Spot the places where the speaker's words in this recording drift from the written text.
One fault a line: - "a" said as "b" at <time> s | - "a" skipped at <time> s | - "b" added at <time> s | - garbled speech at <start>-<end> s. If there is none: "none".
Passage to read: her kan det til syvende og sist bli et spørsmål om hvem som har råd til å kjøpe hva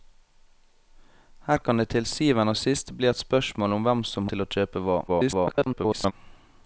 - "har råd" skipped at 4.3 s
- garbled speech at 5.1-6.1 s